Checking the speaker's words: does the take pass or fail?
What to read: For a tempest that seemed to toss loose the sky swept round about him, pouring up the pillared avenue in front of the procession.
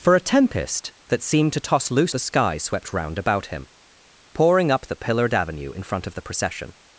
pass